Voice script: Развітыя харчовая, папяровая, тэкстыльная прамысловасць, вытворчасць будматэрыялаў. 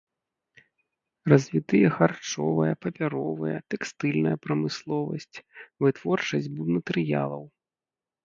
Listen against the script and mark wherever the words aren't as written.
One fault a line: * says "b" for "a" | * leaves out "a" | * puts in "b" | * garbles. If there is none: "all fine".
all fine